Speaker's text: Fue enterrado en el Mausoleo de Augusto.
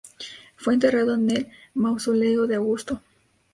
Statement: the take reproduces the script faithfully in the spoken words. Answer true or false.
true